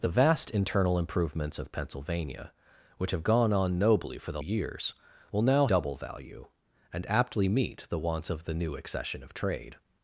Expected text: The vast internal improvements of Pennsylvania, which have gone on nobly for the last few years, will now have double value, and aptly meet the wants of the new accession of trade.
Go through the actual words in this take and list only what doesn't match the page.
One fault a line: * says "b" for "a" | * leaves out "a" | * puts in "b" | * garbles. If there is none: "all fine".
* leaves out "last few"
* leaves out "have"